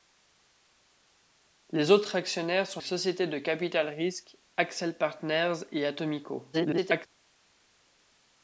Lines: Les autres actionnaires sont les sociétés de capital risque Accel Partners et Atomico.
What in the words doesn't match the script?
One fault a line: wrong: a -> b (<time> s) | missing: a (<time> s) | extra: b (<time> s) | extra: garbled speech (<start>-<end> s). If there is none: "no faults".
missing: les (2.8 s)
extra: garbled speech (6.5-7.1 s)